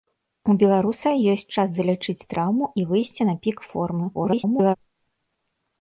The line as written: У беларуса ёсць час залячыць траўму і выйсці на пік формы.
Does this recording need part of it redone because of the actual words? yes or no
yes